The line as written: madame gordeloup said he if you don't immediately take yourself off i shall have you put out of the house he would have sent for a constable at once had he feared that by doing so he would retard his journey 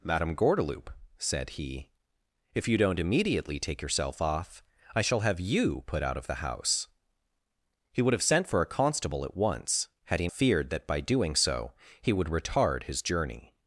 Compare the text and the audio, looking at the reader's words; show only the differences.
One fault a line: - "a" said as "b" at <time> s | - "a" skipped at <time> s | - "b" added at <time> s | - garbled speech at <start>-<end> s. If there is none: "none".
none